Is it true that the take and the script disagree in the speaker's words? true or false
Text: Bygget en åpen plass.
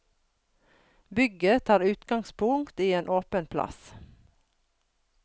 true